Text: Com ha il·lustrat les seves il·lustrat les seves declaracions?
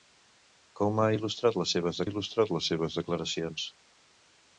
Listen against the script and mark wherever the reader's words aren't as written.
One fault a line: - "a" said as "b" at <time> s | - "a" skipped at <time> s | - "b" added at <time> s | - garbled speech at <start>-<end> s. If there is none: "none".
none